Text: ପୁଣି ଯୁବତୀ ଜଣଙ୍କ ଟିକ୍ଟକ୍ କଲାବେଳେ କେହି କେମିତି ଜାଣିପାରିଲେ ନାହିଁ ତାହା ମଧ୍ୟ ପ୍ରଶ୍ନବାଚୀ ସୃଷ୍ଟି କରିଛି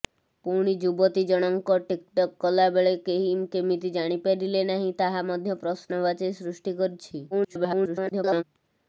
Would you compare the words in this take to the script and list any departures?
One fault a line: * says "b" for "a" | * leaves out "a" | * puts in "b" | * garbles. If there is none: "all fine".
* garbles